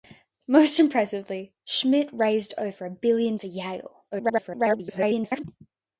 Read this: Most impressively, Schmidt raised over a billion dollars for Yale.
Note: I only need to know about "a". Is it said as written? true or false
true